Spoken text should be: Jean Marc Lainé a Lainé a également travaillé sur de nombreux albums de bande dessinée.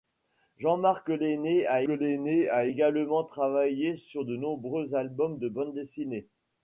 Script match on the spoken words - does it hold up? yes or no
yes